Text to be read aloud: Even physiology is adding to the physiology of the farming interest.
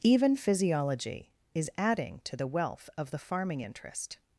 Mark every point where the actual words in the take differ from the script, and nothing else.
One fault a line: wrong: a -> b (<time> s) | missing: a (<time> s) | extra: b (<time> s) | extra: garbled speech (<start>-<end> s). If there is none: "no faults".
wrong: physiology -> wealth (2.5 s)